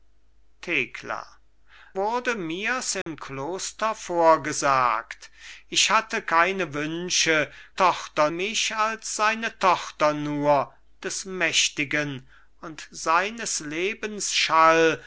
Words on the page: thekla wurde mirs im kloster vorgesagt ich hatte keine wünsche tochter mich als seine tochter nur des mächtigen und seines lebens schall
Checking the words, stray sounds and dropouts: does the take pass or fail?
fail